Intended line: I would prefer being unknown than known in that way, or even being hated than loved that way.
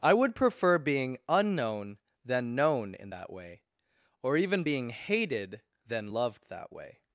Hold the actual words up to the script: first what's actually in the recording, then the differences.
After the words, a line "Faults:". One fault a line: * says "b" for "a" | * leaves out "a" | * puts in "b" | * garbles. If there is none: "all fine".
I would prefer being unknown than known in that way, or even being hated than loved that way.
Faults:
all fine